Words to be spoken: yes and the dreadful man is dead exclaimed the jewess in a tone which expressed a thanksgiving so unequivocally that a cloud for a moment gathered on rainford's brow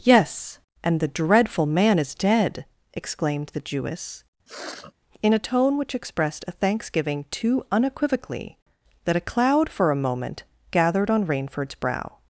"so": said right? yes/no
no